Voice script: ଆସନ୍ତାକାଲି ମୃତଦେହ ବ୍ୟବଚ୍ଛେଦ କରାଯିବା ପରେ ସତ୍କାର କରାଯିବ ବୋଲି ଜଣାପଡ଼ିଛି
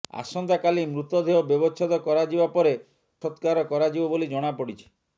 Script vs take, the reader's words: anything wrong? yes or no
no